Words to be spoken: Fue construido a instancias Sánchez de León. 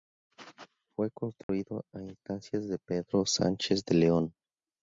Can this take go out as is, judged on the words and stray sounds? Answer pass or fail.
fail